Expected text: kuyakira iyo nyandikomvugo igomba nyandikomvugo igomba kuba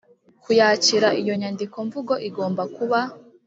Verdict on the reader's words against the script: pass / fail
fail